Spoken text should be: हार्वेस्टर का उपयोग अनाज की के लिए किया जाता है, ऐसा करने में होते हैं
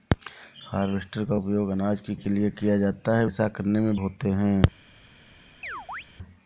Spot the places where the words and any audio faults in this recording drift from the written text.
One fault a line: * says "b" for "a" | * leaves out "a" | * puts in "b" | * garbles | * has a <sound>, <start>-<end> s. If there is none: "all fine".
* has a chirp, 5.6-6.0 s